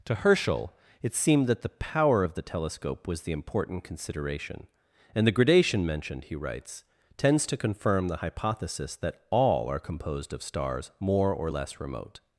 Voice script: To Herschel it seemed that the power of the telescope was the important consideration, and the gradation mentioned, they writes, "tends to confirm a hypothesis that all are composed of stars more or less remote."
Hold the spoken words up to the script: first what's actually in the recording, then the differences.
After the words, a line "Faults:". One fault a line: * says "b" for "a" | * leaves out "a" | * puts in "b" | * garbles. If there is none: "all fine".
To Herschel it seemed that the power of the telescope was the important consideration, and the gradation mentioned, he writes, "tends to confirm the hypothesis that all are composed of stars more or less remote."
Faults:
* says "he" for "they"
* says "the" for "a"